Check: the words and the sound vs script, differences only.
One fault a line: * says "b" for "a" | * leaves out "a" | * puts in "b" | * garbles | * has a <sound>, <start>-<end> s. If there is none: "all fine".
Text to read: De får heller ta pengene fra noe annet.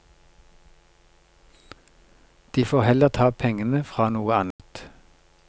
* has a dropout, 4.5-4.6 s